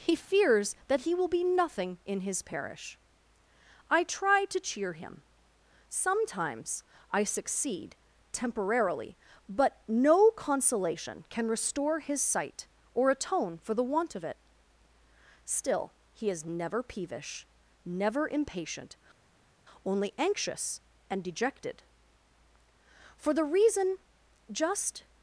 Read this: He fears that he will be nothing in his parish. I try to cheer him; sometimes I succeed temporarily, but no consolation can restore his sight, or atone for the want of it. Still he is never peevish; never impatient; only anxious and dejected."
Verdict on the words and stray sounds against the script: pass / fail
fail